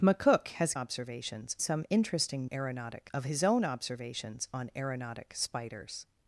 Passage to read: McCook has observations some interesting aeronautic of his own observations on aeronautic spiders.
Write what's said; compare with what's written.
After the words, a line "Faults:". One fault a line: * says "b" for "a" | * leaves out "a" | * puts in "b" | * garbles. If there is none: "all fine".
McCook has observations some interesting aeronautic of his own observations on aeronautic spiders.
Faults:
all fine